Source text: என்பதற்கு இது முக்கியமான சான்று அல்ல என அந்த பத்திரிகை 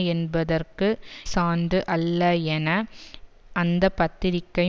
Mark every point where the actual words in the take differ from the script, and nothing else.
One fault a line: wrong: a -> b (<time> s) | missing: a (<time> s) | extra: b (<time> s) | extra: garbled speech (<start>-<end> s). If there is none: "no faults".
missing: இது முக்கியமான (0.9 s)